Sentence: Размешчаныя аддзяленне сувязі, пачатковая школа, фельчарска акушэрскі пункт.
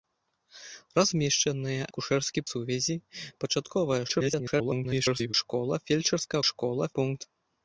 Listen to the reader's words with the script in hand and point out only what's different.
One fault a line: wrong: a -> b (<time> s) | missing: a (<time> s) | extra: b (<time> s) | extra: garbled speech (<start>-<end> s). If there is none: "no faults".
wrong: аддзяленне -> акушэрскі (1.9 s)
extra: garbled speech (4.1-5.3 s)
wrong: акушэрскі -> школа (6.5 s)